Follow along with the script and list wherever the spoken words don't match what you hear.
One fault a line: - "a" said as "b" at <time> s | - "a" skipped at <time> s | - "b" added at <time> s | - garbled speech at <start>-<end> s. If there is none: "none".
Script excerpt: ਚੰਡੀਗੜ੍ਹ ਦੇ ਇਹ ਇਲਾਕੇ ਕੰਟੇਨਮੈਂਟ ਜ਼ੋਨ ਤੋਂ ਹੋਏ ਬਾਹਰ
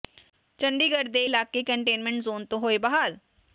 - "ਇਹ" skipped at 1.2 s